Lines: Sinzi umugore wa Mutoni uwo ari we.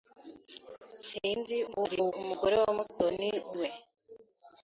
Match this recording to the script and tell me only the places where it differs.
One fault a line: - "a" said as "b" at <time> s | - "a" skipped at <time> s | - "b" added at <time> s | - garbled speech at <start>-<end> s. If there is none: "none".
- garbled speech at 1.7-2.1 s
- "uwo ari" skipped at 3.3 s